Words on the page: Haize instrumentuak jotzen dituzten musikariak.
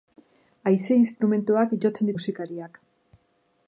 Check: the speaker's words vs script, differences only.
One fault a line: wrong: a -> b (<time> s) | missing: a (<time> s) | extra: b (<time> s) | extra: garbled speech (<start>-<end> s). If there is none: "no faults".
missing: dituzten (2.1 s)